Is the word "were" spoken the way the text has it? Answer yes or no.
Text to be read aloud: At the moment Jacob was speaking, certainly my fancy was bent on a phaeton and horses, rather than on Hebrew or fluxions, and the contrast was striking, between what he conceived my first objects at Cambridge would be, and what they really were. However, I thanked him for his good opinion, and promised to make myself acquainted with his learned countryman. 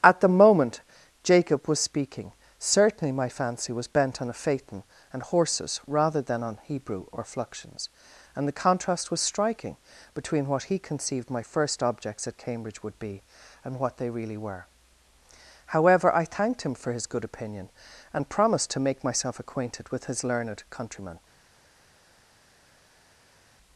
yes